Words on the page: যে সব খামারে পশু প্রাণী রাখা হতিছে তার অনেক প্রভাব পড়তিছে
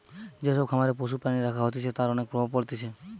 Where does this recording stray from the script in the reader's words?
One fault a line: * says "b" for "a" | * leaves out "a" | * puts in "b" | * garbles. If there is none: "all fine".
all fine